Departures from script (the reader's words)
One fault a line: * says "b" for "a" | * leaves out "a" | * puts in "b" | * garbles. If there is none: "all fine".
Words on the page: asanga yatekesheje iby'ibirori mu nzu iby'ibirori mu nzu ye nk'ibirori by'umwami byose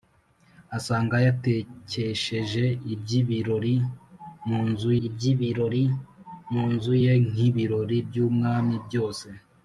all fine